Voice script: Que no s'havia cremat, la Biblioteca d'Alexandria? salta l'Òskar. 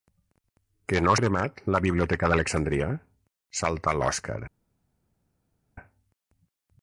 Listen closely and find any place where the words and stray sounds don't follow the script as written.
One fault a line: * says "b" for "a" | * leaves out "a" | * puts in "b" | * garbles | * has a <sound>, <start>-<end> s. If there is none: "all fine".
* leaves out "s'havia"